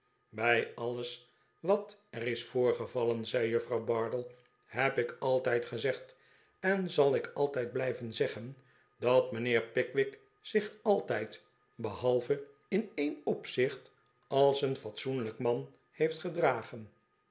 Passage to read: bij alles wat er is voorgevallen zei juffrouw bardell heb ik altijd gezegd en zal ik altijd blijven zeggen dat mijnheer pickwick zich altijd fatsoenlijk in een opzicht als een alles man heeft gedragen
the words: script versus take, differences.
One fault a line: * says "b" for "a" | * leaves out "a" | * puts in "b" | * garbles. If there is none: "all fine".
* says "behalve" for "fatsoenlijk"
* says "fatsoenlijk" for "alles"